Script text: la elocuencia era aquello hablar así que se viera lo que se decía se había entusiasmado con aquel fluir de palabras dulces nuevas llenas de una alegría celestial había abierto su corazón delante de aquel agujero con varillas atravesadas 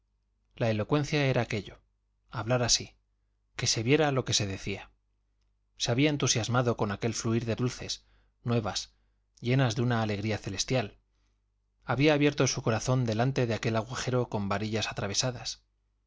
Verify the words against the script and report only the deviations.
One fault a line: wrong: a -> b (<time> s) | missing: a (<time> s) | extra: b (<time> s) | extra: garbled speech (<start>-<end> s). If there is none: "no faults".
missing: palabras (7.5 s)